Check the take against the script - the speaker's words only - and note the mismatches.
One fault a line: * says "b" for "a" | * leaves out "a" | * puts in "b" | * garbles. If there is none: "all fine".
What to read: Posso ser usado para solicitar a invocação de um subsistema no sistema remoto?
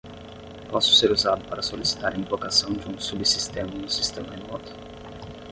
all fine